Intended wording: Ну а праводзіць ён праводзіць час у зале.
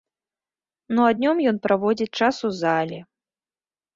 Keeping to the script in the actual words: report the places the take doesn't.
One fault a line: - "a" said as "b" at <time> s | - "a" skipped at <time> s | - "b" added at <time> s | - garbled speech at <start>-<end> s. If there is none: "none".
- "праводзіць" said as "днём" at 1.2 s